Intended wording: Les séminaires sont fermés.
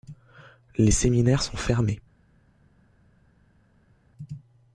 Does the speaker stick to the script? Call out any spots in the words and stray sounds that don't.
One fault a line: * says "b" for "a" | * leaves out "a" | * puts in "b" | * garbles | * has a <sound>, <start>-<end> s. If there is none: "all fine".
all fine